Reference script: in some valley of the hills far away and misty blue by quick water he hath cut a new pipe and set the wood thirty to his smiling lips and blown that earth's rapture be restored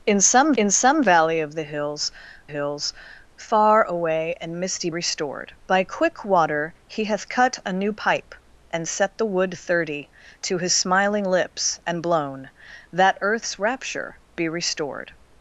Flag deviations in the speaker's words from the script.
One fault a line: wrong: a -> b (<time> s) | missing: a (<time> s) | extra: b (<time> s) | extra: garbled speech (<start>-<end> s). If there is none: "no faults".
extra: in some (0.5 s)
extra: hills (2.5 s)
wrong: blue -> restored (4.9 s)